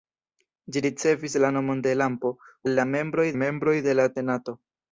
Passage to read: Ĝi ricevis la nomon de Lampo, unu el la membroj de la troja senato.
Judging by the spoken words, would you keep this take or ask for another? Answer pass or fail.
fail